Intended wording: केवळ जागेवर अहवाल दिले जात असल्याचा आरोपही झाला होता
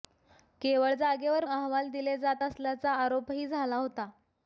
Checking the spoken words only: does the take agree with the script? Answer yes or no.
yes